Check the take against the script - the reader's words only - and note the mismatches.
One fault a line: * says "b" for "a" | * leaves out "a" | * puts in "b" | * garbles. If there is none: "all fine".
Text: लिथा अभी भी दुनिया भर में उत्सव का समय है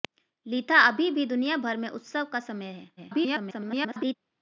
* garbles